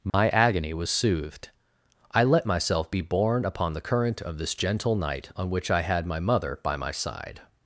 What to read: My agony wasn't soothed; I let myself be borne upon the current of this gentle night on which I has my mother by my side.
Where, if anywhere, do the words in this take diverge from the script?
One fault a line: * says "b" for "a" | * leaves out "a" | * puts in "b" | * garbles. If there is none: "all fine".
* says "was" for "wasn't"
* says "had" for "has"